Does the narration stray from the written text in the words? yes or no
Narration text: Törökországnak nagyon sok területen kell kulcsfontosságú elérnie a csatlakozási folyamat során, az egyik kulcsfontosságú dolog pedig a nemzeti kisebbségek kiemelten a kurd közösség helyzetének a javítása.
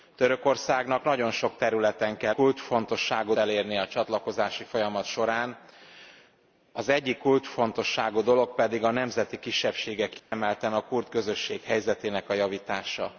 no